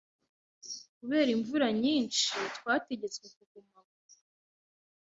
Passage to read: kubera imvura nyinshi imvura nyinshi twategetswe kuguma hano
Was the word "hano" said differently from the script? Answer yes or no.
yes